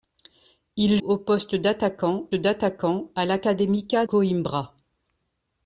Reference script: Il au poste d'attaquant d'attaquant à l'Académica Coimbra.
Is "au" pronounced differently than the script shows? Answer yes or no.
no